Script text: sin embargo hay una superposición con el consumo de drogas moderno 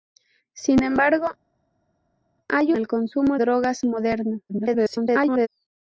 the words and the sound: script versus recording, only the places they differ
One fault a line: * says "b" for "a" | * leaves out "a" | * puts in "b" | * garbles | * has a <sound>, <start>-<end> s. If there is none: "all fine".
* leaves out "una superposición con"
* leaves out "de"
* garbles